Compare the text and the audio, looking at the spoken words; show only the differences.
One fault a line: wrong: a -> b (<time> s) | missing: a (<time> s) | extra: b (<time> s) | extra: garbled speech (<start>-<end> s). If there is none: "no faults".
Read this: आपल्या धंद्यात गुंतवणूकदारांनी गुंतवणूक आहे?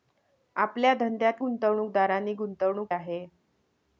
no faults